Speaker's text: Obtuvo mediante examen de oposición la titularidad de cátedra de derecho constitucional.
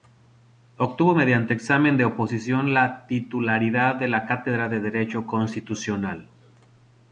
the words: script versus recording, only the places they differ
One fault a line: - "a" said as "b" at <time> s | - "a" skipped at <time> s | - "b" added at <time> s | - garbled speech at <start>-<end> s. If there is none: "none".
- "la" added at 4.1 s